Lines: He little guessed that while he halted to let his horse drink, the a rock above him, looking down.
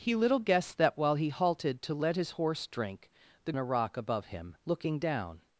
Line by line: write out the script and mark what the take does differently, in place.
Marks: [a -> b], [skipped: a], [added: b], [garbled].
He little guessed that while he halted to let his horse drink, the a rock above him, looking down.